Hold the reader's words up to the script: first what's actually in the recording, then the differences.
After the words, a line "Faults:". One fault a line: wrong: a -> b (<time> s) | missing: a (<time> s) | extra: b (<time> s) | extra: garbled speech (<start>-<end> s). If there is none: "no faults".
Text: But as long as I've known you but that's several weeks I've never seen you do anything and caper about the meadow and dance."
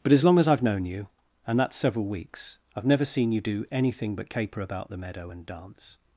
But as long as I've known you and that's several weeks I've never seen you do anything but caper about the meadow and dance."
Faults:
wrong: but -> and (1.5 s)
wrong: and -> but (4.2 s)